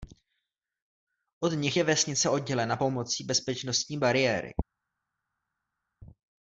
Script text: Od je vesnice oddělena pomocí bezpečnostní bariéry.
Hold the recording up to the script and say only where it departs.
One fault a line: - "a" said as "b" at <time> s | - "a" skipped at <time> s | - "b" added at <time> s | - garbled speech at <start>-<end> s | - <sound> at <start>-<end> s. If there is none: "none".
- "nich" added at 1.5 s